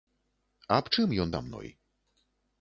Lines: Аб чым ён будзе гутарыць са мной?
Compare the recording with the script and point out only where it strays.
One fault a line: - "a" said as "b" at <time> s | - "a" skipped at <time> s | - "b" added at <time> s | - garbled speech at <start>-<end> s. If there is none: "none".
- "будзе гутарыць" skipped at 1.3 s